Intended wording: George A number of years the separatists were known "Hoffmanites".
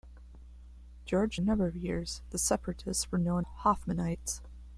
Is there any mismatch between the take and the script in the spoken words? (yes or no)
no